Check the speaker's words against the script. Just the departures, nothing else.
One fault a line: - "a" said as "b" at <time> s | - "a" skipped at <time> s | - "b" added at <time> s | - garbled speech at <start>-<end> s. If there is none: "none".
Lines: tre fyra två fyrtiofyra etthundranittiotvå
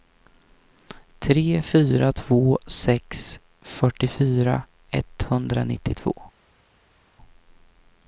- "sex" added at 2.7 s